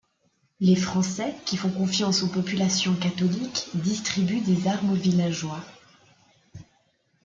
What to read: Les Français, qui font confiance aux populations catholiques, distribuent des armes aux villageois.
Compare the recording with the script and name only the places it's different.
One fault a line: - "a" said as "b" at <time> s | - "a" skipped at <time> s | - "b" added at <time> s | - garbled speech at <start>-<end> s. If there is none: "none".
none